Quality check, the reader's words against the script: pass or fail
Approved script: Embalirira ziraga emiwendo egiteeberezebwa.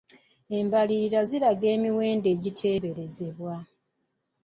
pass